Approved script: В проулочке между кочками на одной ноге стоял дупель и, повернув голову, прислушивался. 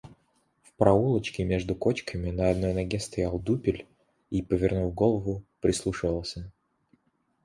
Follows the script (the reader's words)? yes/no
yes